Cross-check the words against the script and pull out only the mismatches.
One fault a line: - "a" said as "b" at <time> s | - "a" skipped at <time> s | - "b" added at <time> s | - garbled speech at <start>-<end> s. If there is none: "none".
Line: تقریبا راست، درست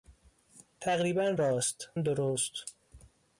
none